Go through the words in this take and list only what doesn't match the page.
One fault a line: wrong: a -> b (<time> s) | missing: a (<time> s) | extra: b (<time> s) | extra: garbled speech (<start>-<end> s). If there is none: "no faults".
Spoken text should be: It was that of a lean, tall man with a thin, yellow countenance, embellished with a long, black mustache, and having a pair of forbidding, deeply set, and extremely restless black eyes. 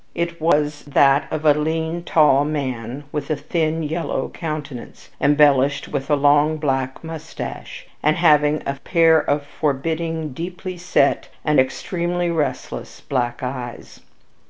no faults